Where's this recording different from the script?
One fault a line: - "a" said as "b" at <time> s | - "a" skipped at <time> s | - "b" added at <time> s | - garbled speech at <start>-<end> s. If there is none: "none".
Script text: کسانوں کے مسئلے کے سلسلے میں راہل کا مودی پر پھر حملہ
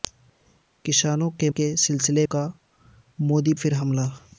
- "مسئلے" skipped at 1.5 s
- "میں راہل" skipped at 2.3 s
- "پر" skipped at 3.5 s